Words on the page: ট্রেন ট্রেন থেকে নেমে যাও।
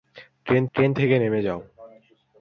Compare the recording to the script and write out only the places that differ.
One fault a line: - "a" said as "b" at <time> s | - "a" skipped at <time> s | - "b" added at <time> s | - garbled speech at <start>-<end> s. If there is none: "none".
none